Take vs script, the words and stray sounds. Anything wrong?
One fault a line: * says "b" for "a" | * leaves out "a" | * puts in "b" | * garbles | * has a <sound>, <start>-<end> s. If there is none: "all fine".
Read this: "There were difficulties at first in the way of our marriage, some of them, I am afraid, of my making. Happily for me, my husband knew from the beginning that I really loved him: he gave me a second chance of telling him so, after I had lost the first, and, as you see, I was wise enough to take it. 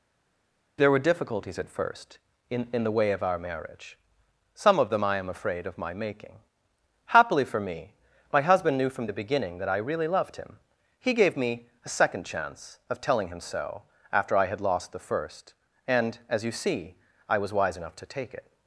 * puts in "in"